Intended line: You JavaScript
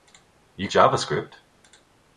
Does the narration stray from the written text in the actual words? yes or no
no